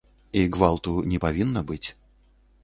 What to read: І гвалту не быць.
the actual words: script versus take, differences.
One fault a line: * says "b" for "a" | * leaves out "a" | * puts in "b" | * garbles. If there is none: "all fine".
* puts in "павінна"